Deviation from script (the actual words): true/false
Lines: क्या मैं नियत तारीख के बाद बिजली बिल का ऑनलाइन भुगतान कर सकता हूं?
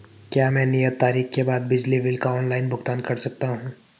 false